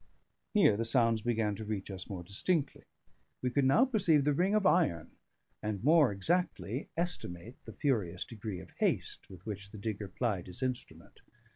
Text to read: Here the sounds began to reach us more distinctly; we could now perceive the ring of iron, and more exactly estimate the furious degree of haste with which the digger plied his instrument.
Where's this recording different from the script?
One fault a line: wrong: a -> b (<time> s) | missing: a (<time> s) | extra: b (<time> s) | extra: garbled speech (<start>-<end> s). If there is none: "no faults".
no faults